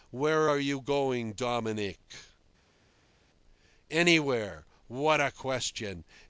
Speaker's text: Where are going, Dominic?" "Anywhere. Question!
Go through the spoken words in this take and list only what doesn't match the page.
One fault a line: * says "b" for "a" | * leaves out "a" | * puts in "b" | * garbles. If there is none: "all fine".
* puts in "you"
* puts in "What a"